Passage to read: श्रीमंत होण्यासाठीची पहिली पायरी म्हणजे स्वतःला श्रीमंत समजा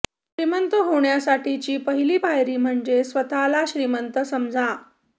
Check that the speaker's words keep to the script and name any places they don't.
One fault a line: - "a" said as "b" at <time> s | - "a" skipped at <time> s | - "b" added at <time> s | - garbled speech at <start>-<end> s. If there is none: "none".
none